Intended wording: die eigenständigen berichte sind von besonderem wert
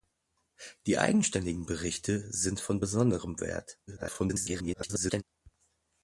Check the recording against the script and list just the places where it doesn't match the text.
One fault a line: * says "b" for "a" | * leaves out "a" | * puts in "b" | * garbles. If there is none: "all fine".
* garbles